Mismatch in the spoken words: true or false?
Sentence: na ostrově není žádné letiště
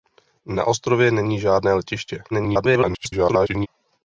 true